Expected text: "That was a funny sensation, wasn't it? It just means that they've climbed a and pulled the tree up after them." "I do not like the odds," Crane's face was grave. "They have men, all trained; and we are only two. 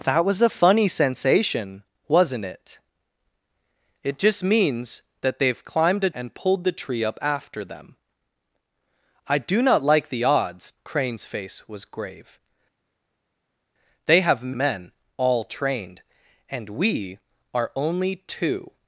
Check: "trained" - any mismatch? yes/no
no